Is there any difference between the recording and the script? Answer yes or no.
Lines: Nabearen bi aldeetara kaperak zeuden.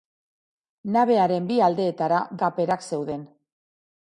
no